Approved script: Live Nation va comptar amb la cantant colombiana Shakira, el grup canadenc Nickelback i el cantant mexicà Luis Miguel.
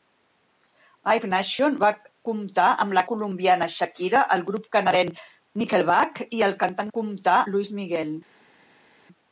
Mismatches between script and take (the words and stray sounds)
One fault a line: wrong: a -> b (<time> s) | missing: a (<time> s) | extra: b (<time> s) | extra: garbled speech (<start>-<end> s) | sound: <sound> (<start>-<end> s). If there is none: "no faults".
missing: cantant (3.0 s)
wrong: mexicà -> comptar (7.0 s)